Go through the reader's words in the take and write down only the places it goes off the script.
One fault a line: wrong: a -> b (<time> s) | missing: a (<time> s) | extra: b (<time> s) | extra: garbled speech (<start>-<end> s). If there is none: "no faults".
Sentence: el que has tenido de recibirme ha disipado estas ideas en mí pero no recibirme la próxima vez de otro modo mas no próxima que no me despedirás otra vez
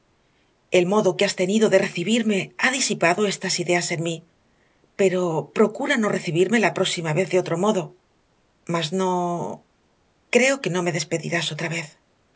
extra: modo (0.9 s)
extra: procura (5.6 s)
wrong: próxima -> creo (10.3 s)